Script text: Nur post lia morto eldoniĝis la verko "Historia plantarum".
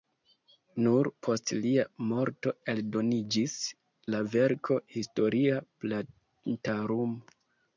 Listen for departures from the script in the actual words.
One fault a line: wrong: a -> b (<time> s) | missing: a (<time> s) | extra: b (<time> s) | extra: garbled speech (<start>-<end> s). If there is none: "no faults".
no faults